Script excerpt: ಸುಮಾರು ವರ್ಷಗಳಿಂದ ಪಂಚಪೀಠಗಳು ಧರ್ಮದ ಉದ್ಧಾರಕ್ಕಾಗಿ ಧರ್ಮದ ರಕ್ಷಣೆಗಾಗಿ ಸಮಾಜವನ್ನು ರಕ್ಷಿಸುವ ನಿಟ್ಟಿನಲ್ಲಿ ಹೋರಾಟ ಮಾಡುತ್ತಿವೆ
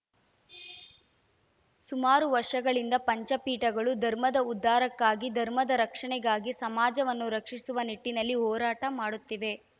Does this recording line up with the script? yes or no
yes